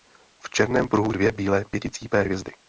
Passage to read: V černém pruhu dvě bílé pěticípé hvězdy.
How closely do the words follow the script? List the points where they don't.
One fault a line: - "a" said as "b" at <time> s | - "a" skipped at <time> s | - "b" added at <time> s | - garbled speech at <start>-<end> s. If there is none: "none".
none